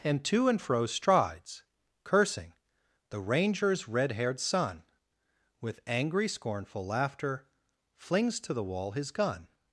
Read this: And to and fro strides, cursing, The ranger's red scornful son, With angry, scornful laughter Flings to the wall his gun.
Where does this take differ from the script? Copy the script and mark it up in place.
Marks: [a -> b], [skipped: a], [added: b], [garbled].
And to and fro strides, cursing, The ranger's red [scornful -> haired] son, With angry, scornful laughter Flings to the wall his gun.